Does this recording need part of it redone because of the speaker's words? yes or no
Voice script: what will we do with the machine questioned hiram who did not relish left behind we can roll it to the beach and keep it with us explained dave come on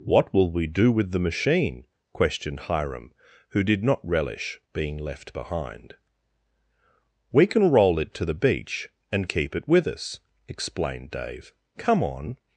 yes